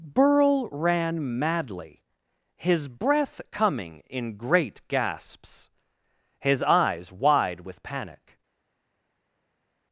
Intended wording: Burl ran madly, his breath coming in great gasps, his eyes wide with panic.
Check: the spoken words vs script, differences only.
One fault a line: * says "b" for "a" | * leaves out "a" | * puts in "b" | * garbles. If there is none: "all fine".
all fine